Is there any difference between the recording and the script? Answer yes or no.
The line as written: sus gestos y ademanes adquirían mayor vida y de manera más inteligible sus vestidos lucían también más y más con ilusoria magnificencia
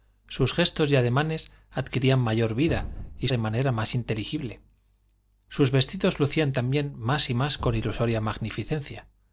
no